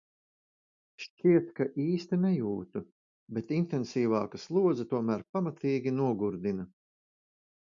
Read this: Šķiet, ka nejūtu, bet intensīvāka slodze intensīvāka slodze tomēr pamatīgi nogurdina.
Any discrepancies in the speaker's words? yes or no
yes